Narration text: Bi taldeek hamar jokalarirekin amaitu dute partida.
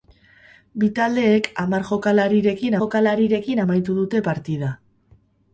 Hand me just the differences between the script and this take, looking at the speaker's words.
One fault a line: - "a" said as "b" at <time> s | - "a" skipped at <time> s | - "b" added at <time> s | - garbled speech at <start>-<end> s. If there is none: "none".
- "jokalarirekin" added at 2.8 s